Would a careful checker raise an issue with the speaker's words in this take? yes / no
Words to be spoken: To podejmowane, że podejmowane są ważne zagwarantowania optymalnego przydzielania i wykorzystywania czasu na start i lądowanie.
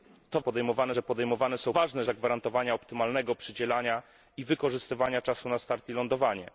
no